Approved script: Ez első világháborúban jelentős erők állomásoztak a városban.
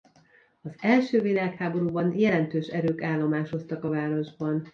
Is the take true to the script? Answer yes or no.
no